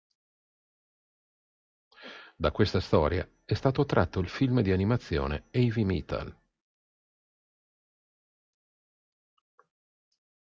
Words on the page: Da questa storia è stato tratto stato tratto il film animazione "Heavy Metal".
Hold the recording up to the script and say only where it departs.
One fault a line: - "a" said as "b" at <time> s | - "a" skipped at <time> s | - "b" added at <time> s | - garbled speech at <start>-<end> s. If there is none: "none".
- "stato tratto" skipped at 4.2 s
- "di" added at 4.6 s